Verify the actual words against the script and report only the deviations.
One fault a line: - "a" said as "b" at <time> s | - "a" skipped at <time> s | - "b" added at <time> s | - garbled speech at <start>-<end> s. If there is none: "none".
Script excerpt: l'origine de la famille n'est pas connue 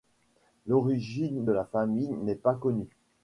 none